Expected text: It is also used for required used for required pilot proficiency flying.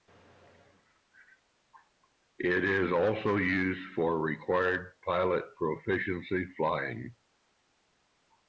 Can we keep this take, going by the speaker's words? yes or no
no